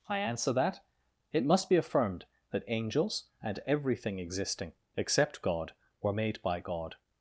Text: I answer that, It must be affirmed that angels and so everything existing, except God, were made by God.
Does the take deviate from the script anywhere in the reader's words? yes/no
yes